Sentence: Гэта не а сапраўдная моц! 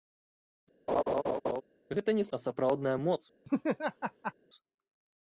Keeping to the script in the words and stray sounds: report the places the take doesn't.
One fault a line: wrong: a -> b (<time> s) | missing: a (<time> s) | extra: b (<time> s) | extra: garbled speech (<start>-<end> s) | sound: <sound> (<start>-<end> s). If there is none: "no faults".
sound: laugh (0.9-1.6 s)
sound: laugh (3.4-4.3 s)